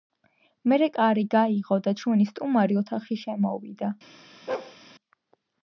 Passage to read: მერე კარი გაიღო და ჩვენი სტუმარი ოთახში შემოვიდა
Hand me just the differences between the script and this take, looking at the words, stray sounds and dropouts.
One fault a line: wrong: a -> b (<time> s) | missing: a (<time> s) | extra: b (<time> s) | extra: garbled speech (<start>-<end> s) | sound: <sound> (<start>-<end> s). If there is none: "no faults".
sound: bark (4.5-4.8 s)